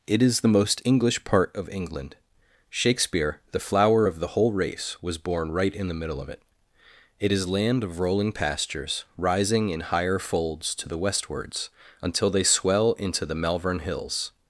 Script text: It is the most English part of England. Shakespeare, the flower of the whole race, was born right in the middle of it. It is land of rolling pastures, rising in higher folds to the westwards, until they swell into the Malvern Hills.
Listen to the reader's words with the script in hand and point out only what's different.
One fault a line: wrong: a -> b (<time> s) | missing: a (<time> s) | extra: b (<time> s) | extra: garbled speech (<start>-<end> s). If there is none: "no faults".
no faults